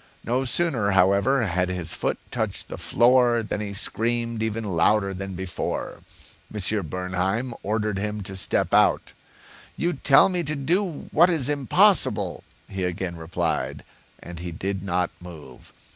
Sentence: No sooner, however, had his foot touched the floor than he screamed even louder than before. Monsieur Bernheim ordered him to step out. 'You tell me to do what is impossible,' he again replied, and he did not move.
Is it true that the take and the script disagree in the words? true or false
false